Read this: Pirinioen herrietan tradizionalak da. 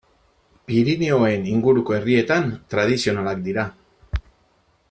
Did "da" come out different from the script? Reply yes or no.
yes